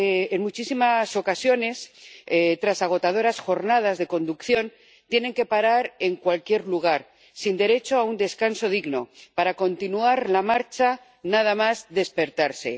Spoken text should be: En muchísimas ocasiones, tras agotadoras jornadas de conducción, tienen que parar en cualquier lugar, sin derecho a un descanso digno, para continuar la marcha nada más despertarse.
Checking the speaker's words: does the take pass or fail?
pass